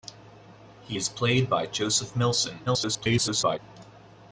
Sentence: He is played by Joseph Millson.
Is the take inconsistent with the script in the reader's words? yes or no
yes